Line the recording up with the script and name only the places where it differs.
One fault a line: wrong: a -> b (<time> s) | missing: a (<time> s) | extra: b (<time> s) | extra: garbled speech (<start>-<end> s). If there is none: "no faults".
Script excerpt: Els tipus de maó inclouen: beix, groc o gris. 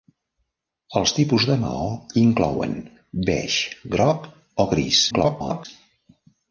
extra: garbled speech (5.1-5.7 s)